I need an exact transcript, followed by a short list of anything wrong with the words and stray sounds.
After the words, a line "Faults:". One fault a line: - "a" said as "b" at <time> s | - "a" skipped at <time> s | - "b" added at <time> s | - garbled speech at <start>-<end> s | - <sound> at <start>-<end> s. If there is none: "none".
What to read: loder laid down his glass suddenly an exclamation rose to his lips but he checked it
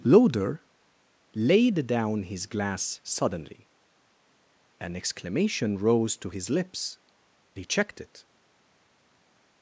loder laid down his glass suddenly an exclamation rose to his lips he checked it
Faults:
- "but" skipped at 7.0 s